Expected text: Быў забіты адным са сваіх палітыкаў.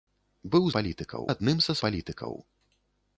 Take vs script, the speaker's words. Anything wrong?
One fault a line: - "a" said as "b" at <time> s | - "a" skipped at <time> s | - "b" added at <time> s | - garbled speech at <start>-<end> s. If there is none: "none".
- "забіты" said as "палітыкаў" at 0.8 s
- "сваіх" skipped at 1.8 s